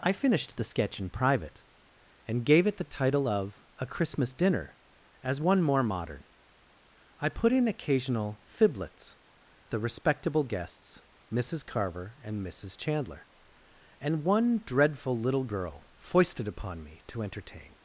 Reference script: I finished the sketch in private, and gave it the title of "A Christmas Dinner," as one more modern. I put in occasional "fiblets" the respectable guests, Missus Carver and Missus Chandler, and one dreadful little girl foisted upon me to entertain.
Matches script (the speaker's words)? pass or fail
pass